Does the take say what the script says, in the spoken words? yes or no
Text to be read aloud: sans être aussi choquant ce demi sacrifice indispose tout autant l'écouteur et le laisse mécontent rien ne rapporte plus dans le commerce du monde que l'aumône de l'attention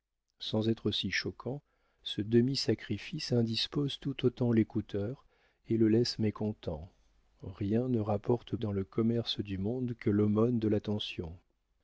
no